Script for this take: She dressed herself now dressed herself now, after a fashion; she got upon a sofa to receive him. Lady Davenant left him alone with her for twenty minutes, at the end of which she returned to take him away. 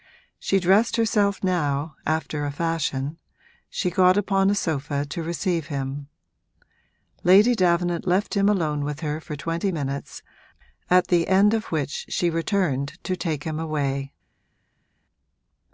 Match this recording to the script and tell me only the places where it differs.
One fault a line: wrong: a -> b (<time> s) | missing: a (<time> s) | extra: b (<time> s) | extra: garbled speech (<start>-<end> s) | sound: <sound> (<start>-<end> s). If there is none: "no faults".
missing: dressed herself now (1.9 s)